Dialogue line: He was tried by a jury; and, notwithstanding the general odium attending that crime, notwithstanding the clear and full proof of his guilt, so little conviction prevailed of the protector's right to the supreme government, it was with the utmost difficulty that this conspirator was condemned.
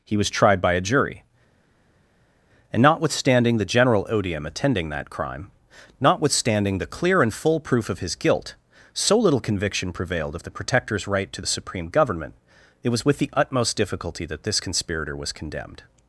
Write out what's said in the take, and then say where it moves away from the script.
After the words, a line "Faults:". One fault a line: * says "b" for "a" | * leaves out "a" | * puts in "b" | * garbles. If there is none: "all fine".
He was tried by a jury; and, notwithstanding the general odium attending that crime, notwithstanding the clear and full proof of his guilt, so little conviction prevailed of the protector's right to the supreme government, it was with the utmost difficulty that this conspirator was condemned.
Faults:
all fine